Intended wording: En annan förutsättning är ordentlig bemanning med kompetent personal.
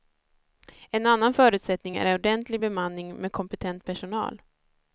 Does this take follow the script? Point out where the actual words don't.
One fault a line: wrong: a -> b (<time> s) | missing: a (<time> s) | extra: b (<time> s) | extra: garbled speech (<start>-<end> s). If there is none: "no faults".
no faults